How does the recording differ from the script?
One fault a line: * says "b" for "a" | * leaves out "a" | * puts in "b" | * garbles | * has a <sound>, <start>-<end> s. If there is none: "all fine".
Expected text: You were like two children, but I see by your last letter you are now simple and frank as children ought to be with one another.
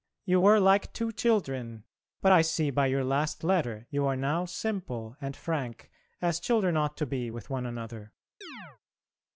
* has a chirp, 8.4-8.8 s